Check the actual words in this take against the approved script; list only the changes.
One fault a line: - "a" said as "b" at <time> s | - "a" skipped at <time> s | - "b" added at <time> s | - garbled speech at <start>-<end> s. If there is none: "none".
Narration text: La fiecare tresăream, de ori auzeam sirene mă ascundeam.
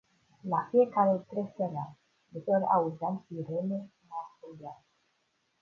none